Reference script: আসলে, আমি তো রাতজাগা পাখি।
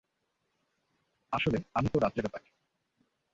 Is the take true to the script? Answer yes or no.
yes